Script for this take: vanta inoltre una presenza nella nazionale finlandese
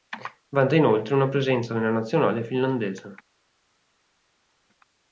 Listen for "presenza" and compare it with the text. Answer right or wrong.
right